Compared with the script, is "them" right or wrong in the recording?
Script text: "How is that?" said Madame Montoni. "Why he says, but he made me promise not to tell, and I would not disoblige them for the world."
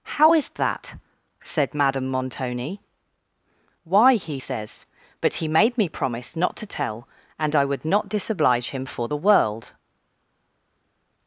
wrong